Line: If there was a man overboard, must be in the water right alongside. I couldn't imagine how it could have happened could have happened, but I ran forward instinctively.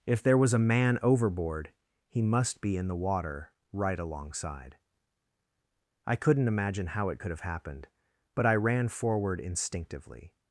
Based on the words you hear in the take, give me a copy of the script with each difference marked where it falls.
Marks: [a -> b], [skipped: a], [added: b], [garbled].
If there was a man overboard, [added: he] must be in the water right alongside. I couldn't imagine how it could have happened [skipped: could have happened,] but I ran forward instinctively.